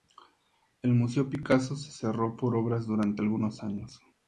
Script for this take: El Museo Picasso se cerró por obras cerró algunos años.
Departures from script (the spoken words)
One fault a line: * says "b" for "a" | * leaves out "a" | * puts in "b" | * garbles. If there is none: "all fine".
* says "durante" for "cerró"